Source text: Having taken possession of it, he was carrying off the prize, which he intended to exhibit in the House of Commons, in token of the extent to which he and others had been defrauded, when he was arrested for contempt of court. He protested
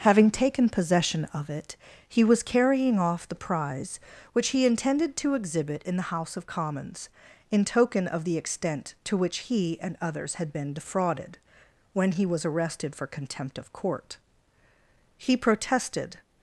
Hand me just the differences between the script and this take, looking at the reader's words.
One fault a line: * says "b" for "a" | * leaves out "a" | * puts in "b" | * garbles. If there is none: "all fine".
all fine